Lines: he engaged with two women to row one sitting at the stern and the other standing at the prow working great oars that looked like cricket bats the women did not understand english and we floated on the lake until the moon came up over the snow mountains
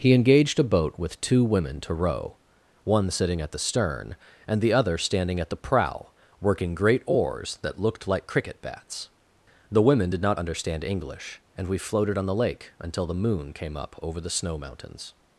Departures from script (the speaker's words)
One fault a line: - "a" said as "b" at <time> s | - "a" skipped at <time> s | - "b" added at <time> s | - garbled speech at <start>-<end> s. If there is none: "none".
- "a boat" added at 0.6 s